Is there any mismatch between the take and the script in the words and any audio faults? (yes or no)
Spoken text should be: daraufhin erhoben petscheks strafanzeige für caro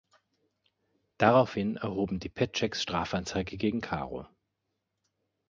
yes